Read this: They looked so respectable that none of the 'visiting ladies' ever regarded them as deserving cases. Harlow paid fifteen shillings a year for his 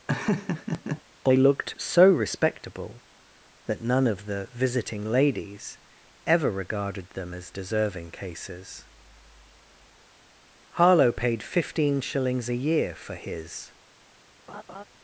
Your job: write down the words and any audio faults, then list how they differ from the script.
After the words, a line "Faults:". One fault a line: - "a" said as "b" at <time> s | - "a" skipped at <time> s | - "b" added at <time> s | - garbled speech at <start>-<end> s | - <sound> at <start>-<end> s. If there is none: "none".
They looked so respectable that none of the 'visiting ladies' ever regarded them as deserving cases. Harlow paid fifteen shillings a year for his
Faults:
- laugh at 0.1-1.0 s
- laugh at 14.5-14.8 s